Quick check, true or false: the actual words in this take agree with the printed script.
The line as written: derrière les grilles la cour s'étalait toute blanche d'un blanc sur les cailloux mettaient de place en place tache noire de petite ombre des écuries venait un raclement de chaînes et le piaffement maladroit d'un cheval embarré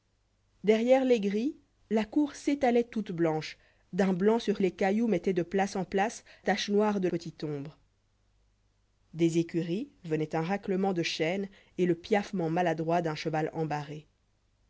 true